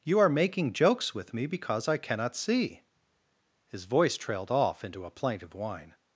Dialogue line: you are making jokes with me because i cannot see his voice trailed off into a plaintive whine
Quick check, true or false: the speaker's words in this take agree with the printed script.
true